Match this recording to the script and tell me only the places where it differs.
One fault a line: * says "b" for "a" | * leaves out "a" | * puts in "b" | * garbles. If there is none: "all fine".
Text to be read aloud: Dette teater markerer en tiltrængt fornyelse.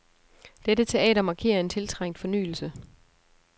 all fine